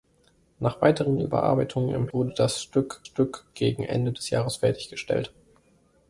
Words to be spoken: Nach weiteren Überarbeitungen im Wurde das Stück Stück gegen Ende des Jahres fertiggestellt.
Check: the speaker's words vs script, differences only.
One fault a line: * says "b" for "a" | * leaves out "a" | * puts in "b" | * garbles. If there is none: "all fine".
all fine